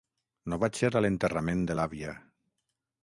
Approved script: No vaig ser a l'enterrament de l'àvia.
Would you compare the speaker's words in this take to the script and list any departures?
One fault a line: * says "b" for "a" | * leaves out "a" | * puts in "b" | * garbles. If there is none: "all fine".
all fine